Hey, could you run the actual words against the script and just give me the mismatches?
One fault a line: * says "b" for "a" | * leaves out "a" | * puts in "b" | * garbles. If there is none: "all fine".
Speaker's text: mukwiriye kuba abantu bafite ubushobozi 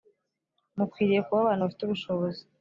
all fine